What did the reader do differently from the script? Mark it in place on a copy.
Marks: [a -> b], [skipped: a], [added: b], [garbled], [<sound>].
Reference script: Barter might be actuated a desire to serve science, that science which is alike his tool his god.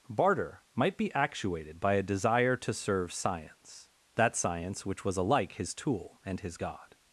Barter might be actuated [added: by] a desire to serve science, that science which [is -> was] alike his tool [added: and] his god.